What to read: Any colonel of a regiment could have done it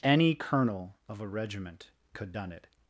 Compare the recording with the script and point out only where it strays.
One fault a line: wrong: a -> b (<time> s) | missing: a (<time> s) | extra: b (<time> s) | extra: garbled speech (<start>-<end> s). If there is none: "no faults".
missing: have (2.3 s)